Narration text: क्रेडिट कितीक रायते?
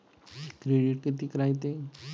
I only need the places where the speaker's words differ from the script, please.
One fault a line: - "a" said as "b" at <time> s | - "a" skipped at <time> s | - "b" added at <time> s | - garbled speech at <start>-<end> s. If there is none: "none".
none